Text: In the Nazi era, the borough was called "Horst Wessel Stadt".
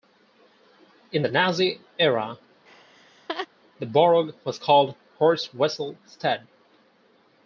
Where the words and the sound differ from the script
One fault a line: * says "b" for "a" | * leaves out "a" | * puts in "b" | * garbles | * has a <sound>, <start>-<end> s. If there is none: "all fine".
* has a laugh, 2.7-3.5 s